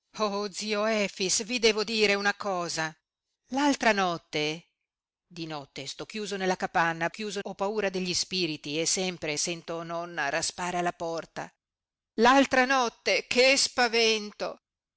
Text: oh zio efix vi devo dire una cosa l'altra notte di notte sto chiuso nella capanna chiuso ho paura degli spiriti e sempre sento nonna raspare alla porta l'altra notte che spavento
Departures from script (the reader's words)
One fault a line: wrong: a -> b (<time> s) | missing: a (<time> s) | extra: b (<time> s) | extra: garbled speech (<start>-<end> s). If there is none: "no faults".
no faults